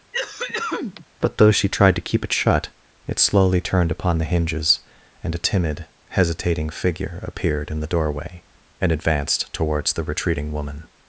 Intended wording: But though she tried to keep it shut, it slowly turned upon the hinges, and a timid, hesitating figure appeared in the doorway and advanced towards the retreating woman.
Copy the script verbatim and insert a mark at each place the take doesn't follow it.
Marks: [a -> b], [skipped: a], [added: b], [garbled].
But though she tried to keep it shut, it slowly turned upon the hinges, and a timid, hesitating figure appeared in the doorway and advanced towards the retreating woman.